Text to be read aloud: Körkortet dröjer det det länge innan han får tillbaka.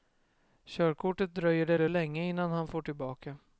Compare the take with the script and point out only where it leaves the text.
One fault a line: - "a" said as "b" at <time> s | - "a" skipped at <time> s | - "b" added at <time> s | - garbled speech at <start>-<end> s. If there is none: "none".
none